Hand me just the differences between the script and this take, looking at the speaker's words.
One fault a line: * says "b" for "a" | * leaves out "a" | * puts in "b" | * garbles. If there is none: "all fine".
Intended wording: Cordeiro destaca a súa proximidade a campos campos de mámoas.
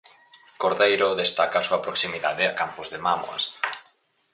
* leaves out "campos"